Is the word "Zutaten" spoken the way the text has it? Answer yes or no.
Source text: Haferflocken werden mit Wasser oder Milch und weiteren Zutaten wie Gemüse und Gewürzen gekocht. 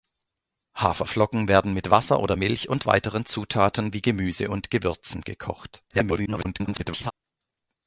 yes